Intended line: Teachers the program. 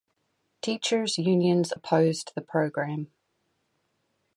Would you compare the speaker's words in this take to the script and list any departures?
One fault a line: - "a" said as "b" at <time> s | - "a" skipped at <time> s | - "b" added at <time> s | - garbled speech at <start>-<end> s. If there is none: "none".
- "unions opposed" added at 1.2 s